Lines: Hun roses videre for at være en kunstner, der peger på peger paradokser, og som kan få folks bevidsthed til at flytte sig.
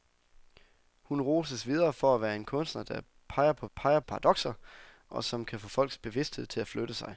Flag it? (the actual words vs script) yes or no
no